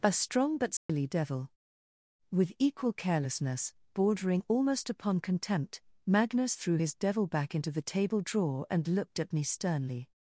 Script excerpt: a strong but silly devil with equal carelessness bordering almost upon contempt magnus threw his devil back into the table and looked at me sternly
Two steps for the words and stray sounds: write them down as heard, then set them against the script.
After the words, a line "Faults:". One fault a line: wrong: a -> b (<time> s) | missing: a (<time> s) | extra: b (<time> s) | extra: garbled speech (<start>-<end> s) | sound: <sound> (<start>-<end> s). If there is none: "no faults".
a strong but silly devil with equal carelessness bordering almost upon contempt magnus threw his devil back into the table drawer and looked at me sternly
Faults:
sound: dropout (0.8-0.9 s)
extra: drawer (8.2 s)